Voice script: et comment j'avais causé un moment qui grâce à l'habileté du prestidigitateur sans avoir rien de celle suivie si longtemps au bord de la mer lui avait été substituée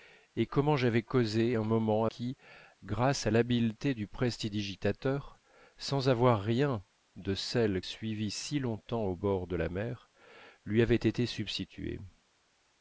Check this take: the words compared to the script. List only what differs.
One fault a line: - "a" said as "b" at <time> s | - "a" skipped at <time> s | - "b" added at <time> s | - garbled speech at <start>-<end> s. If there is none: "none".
none